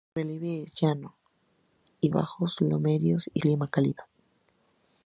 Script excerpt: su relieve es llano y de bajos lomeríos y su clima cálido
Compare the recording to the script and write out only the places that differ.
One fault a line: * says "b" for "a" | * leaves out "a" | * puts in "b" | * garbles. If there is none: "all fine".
* leaves out "de"
* leaves out "su"